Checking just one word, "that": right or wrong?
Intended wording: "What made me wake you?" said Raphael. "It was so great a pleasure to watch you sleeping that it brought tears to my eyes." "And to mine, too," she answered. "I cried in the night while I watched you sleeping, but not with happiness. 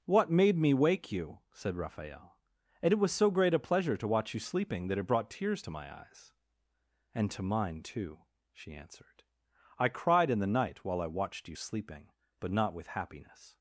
right